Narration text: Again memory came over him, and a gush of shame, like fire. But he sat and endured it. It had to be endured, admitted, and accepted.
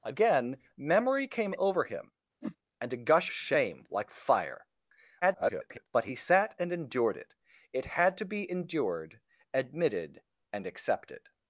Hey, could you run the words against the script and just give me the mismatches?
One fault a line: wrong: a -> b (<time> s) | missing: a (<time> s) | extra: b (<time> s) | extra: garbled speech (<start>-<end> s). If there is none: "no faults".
missing: of (3.3 s)
extra: garbled speech (5.2-5.9 s)